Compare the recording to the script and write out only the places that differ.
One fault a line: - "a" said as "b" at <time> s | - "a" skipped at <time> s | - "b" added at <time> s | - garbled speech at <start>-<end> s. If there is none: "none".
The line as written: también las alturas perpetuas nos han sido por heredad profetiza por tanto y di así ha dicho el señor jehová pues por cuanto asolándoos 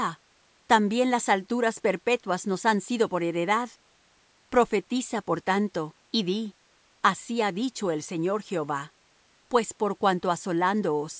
none